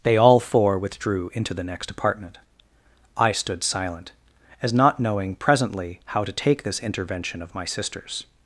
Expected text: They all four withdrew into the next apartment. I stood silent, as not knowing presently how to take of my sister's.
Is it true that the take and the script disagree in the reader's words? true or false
true